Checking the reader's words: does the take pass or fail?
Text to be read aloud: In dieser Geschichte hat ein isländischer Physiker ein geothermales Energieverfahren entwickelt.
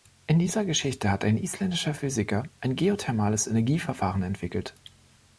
pass